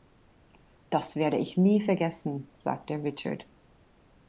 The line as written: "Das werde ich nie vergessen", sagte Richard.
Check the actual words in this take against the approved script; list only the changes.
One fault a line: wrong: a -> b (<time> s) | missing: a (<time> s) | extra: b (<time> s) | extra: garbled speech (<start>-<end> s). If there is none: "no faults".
no faults